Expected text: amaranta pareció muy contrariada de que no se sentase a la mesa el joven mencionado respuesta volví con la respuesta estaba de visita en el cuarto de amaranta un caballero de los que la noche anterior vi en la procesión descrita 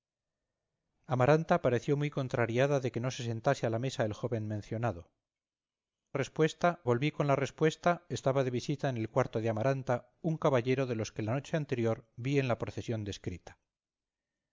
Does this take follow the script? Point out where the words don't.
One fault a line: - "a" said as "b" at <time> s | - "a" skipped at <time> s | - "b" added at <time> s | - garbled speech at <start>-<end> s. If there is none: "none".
none